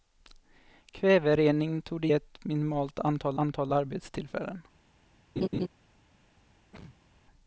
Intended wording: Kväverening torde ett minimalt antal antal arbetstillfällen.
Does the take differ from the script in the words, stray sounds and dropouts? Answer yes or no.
yes